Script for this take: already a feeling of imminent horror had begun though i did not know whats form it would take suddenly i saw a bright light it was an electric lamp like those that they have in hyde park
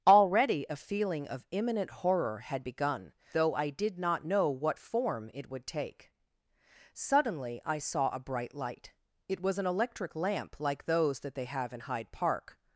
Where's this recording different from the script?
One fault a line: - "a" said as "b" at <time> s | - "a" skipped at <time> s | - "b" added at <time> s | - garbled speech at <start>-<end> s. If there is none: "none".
- "whats" said as "what" at 4.5 s